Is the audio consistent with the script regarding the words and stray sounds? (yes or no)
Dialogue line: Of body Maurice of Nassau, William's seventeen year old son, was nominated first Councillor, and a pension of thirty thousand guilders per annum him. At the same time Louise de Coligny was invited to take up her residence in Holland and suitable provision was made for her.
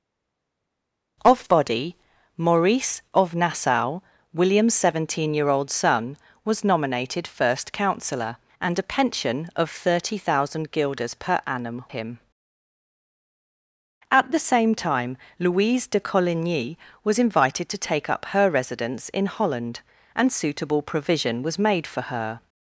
yes